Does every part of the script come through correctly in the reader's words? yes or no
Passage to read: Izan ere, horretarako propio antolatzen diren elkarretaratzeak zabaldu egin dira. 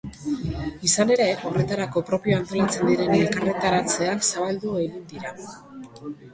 yes